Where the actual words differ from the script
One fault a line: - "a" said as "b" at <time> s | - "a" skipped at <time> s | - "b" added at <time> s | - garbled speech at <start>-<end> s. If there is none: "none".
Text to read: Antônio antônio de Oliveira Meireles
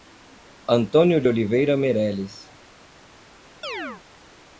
- "antônio" skipped at 1.2 s